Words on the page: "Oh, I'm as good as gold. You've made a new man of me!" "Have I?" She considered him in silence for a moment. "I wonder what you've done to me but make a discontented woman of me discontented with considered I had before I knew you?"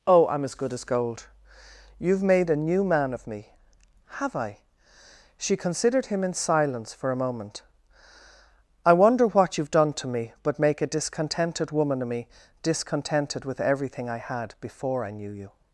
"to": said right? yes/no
yes